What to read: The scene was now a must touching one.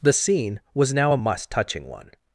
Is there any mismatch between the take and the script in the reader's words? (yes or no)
no